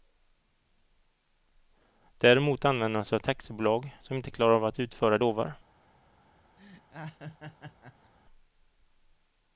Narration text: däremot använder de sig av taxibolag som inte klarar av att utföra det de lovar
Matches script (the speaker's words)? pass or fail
fail